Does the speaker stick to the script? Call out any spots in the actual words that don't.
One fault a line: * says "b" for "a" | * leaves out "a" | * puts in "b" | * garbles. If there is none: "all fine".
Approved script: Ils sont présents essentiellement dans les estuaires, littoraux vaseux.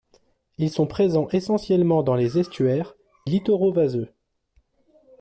all fine